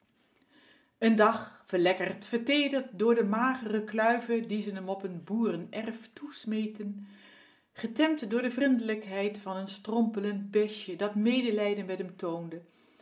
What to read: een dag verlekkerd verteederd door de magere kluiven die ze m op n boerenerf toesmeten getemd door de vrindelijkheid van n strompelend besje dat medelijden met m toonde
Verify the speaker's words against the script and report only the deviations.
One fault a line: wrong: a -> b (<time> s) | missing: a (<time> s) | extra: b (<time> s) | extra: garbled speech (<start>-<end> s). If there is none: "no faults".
no faults